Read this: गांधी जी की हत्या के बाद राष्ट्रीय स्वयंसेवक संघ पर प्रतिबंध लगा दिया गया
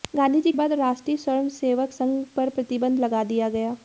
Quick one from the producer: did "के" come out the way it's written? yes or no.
no